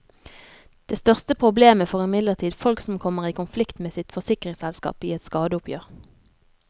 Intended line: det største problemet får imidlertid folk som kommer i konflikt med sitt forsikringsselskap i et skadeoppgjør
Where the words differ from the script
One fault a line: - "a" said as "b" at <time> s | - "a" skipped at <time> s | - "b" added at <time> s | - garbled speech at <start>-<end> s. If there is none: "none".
none